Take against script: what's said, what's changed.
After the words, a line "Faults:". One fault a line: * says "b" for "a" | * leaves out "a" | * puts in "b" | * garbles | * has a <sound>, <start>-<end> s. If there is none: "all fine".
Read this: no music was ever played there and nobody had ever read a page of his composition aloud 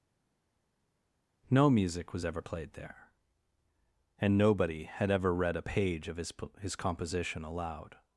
no music was ever played there and nobody had ever read a page of his his composition aloud
Faults:
* puts in "his"